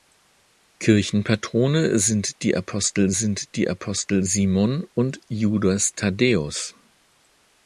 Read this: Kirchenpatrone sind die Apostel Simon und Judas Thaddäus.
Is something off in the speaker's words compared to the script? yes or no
yes